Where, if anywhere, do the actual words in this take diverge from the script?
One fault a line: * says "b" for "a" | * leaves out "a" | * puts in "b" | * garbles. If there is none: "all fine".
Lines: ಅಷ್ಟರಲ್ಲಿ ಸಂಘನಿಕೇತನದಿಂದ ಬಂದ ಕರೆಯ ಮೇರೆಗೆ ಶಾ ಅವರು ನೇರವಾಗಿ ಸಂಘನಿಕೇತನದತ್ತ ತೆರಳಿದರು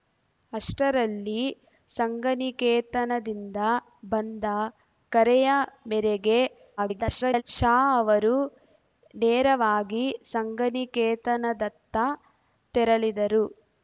* garbles